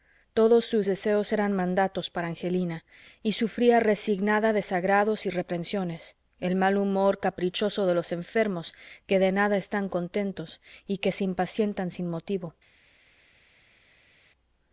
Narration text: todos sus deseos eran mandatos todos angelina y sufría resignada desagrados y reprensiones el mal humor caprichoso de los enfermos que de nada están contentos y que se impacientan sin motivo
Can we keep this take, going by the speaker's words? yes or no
no